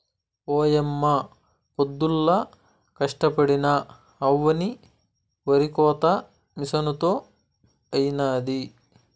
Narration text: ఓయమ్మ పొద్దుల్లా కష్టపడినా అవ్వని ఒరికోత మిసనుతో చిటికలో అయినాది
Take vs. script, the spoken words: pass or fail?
fail